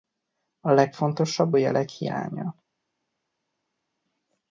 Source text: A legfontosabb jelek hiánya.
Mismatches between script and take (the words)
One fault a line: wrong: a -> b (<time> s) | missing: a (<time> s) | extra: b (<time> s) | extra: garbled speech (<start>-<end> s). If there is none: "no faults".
no faults